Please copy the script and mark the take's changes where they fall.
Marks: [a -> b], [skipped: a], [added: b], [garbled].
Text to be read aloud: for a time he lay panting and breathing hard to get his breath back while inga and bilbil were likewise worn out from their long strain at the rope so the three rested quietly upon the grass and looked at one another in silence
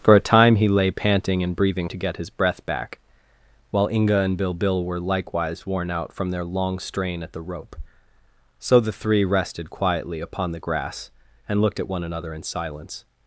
for a time he lay panting and breathing [skipped: hard] to get his breath back while inga and bilbil were likewise worn out from their long strain at the rope so the three rested quietly upon the grass and looked at one another in silence